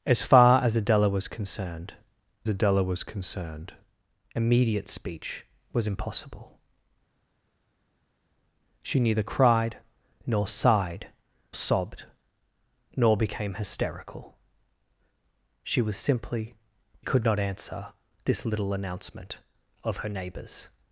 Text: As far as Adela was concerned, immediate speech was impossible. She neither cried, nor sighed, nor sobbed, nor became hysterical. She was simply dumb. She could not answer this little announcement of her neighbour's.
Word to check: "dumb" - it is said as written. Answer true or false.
false